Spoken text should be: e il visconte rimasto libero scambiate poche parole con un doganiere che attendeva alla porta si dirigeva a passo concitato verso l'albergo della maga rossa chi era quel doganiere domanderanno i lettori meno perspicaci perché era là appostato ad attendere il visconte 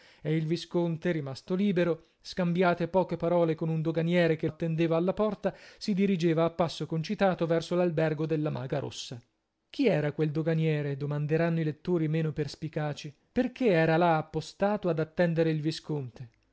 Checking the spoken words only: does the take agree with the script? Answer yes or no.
yes